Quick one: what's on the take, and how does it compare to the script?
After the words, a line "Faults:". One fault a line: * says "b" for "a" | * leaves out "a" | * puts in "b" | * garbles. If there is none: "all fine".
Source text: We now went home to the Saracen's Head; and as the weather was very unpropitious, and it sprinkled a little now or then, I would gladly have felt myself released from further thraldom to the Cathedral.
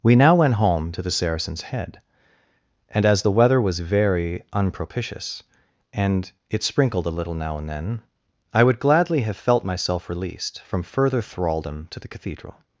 We now went home to the Saracen's Head; and as the weather was very unpropitious, and it sprinkled a little now and then, I would gladly have felt myself released from further thraldom to the Cathedral.
Faults:
* says "and" for "or"